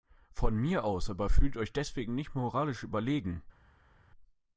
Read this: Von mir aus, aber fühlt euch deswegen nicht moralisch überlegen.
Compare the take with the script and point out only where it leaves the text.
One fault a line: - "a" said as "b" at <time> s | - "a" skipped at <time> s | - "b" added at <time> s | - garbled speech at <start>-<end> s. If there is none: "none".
none